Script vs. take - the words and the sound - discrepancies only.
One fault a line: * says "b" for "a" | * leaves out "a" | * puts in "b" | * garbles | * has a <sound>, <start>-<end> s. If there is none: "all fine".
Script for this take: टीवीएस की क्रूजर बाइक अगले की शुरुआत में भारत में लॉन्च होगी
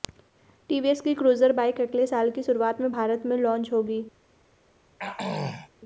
* puts in "साल"
* has a throat clearing, 5.0-5.7 s